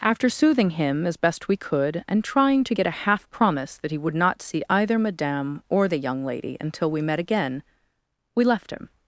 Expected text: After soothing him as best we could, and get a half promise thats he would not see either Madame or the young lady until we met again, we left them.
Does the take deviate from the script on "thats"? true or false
true